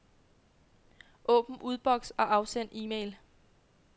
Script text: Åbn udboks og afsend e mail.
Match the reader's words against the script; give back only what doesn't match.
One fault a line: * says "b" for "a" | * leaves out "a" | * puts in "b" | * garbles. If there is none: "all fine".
all fine